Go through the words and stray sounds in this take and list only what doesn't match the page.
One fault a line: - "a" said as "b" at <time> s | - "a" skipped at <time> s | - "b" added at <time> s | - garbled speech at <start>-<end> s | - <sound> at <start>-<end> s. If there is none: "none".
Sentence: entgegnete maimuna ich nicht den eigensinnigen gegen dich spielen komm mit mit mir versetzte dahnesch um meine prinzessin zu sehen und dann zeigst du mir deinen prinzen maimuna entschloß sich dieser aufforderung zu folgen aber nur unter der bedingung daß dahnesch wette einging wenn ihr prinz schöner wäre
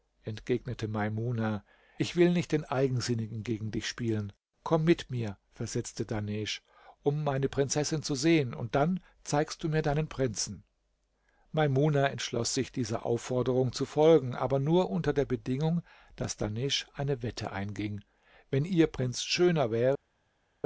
- "will" added at 2.1 s
- "mit" skipped at 5.1 s
- "eine" added at 16.9 s